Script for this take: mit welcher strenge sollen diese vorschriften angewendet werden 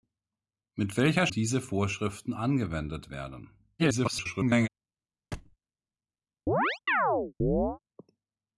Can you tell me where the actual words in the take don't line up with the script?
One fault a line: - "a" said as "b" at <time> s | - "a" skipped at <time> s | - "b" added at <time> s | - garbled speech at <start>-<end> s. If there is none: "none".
- "strenge sollen" skipped at 1.3 s
- garbled speech at 3.8-4.7 s